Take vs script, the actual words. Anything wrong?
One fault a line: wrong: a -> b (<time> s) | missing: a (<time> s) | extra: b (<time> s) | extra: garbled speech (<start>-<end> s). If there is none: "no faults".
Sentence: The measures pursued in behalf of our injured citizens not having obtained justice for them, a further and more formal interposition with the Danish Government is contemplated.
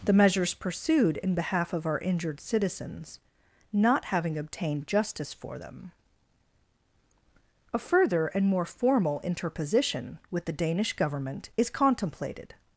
no faults